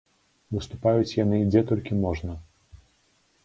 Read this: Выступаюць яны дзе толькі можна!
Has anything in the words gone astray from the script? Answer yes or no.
no